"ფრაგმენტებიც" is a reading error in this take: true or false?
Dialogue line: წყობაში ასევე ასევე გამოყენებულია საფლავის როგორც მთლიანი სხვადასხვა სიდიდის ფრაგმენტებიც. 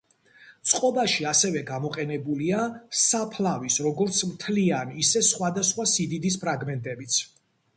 false